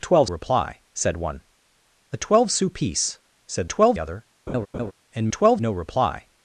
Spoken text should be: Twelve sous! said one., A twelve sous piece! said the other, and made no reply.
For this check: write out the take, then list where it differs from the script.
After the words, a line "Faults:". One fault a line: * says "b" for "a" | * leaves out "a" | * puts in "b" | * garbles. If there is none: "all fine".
Twelve reply! said one., A twelve sous piece! said twelve other, and twelve no reply.
Faults:
* says "reply" for "sous"
* says "twelve" for "the"
* says "twelve" for "made"